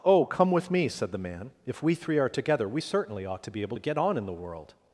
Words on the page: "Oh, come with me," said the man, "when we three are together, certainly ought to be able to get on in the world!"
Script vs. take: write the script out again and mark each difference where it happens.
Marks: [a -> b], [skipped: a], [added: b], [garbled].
"Oh, come with me," said the man, ["when -> if] we three are together, [added: we] certainly ought to be able to get on in the world!"